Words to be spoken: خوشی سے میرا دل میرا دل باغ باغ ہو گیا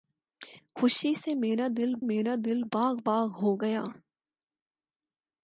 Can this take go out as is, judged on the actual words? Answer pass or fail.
pass